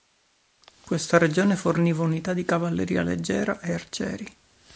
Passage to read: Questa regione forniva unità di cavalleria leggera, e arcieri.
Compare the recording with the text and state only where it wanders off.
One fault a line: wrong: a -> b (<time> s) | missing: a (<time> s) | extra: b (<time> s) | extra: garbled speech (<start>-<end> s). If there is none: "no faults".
no faults